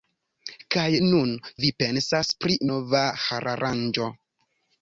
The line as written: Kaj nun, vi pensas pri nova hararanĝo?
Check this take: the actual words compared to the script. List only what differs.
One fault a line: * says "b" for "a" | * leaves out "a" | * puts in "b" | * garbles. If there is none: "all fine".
all fine